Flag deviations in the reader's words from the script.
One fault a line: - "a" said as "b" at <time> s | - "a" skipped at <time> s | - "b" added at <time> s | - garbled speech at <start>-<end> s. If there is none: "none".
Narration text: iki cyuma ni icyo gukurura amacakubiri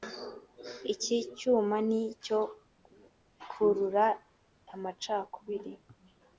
none